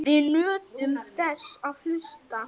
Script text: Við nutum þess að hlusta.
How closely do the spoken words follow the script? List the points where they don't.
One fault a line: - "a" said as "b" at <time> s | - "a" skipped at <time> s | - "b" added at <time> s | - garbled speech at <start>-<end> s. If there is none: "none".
none